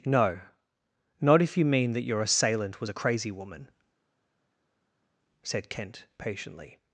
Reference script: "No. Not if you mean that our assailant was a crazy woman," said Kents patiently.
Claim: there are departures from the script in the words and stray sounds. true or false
true